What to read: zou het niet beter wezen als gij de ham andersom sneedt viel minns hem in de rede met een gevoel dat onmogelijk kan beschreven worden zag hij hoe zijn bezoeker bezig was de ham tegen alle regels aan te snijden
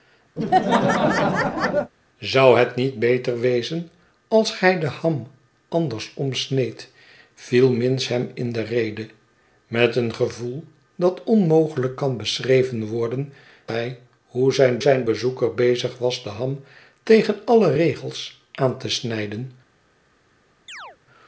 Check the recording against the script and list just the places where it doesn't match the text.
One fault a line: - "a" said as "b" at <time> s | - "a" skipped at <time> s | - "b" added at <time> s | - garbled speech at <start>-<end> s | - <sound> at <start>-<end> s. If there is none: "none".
- laugh at 0.4-1.9 s
- "zag" skipped at 13.3 s
- "zijn" added at 14.8 s
- chirp at 20.7-21.0 s